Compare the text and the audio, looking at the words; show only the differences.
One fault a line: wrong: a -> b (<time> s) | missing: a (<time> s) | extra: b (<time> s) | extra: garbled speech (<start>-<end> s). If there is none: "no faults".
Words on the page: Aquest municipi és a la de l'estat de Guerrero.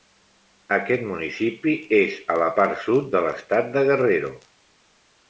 extra: part sud (2.6 s)